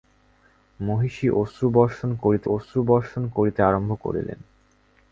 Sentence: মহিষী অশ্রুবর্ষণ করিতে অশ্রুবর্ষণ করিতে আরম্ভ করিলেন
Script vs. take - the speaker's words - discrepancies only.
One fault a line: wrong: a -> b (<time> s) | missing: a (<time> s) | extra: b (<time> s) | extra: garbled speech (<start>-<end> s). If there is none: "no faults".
no faults